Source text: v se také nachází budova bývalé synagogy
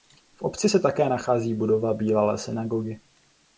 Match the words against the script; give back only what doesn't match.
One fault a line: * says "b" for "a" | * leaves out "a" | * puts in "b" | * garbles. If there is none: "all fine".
* puts in "obci"